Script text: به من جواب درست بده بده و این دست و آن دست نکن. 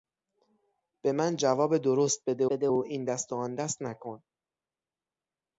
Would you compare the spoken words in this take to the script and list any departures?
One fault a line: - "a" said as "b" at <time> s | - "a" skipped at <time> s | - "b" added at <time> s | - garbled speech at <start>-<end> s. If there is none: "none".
none